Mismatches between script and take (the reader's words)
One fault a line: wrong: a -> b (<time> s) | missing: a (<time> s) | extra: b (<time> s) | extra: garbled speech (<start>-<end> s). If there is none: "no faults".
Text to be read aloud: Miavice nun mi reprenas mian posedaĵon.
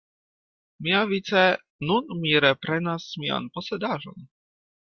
no faults